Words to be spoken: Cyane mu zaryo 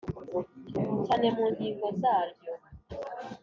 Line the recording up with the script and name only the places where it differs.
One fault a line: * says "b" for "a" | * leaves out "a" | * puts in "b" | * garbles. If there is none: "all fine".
* puts in "ngingo"